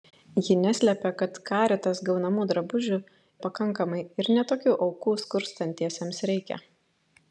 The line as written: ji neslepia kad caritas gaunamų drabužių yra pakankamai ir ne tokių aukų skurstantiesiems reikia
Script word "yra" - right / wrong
wrong